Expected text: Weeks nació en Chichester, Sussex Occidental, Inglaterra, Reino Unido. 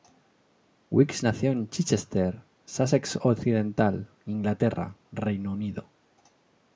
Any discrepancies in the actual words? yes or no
no